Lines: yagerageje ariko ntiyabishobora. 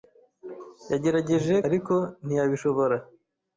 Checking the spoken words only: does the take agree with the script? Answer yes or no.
yes